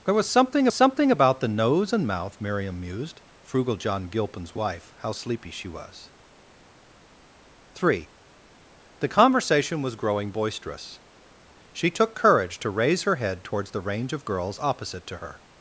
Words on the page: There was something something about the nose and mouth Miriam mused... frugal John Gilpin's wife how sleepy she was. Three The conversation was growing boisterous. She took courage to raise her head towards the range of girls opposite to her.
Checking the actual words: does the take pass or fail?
pass